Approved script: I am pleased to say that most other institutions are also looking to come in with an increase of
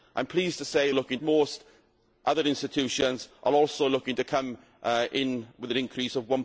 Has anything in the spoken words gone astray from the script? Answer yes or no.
yes